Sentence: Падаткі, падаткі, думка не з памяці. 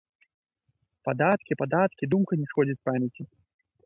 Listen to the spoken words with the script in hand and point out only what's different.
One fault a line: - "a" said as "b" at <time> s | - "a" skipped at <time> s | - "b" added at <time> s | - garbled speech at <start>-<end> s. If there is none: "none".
- "сходзіць" added at 2.5 s